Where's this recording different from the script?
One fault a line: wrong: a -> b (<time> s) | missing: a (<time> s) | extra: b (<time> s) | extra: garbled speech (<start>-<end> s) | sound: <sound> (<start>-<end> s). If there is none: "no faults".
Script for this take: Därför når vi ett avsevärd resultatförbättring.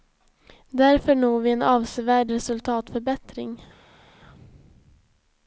wrong: ett -> en (1.5 s)